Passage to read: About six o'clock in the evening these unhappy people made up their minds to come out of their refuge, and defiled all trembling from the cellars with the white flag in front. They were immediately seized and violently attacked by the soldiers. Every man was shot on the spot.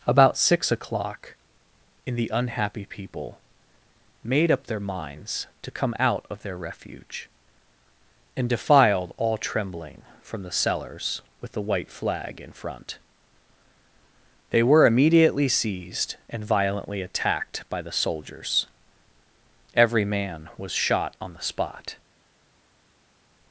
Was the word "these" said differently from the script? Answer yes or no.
yes